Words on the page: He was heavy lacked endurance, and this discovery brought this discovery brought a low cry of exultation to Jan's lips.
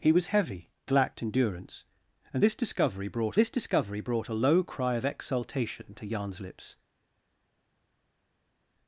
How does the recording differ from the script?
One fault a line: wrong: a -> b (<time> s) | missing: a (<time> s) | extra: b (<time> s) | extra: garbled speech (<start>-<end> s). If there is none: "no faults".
no faults